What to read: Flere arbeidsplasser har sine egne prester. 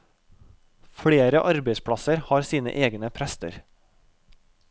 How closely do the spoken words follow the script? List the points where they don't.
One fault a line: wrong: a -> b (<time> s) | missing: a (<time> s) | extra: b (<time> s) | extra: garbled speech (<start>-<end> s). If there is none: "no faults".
no faults